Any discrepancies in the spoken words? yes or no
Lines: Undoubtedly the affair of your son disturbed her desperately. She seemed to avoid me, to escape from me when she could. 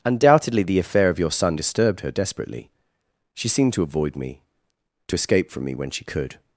no